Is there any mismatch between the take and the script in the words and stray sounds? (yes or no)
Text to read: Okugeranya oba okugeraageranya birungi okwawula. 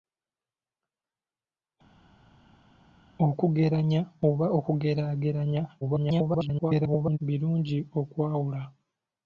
yes